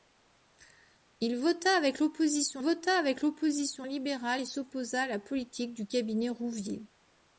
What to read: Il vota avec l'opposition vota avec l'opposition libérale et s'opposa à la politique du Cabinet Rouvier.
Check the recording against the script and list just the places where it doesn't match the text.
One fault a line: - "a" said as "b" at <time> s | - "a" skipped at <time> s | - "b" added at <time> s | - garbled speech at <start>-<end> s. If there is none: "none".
none